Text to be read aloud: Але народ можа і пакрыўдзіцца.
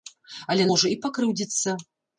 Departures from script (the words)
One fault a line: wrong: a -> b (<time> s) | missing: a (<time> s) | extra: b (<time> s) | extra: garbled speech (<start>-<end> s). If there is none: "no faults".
missing: народ (0.7 s)